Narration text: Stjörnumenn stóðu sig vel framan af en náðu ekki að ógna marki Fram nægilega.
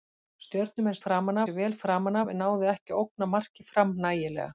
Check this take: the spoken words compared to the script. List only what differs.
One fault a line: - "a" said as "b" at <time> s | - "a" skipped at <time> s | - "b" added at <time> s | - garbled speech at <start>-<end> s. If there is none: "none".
- "stóðu" said as "framan" at 1.1 s